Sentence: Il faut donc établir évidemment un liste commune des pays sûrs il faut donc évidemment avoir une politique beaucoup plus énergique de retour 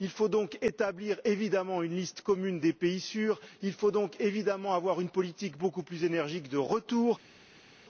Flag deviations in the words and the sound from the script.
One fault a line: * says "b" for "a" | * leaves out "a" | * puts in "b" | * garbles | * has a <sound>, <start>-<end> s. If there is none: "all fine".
* says "une" for "un"